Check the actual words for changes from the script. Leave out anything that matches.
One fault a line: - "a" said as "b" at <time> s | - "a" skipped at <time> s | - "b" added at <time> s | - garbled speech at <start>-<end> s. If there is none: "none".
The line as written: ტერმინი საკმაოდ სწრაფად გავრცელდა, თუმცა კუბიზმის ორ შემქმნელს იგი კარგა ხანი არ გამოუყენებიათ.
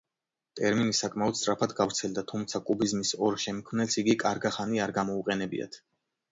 none